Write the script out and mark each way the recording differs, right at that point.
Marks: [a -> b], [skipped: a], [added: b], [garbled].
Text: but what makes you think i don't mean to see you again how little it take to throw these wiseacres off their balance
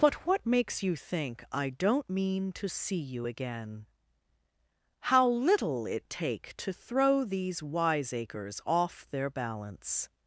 but what makes you think i don't mean to see you again how little it take to throw these wiseacres off their balance